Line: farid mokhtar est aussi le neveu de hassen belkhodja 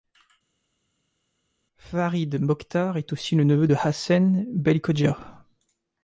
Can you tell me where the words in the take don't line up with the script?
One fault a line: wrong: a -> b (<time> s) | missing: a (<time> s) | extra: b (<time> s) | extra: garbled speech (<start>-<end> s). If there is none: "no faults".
no faults